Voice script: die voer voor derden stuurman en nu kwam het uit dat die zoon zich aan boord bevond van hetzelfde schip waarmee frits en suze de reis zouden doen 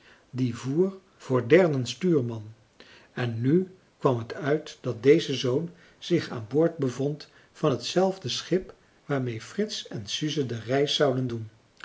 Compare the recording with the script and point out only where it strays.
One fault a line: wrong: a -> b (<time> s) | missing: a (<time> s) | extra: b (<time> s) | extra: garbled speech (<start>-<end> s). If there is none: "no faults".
wrong: die -> deze (5.0 s)